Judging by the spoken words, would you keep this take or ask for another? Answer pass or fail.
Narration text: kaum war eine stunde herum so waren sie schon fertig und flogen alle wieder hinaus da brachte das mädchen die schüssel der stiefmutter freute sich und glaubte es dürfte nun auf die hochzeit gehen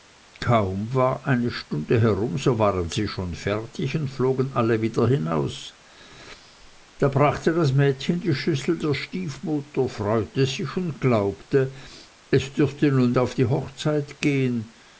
pass